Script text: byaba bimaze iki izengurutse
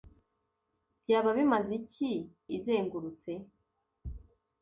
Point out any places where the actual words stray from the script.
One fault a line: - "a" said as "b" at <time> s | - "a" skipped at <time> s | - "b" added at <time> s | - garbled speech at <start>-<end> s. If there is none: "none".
none